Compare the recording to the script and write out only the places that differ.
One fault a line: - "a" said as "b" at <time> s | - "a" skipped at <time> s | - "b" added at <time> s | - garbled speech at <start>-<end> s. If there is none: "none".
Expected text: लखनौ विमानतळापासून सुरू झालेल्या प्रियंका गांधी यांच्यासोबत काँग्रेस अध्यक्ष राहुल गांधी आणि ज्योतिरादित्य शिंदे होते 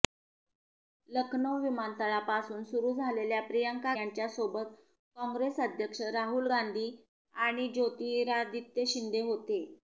- "गांधी" skipped at 3.9 s